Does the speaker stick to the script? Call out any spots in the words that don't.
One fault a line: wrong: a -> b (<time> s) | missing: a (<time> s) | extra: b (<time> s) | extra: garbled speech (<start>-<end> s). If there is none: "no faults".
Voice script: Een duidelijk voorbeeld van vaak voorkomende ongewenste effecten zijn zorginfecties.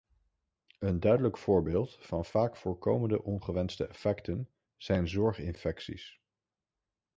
no faults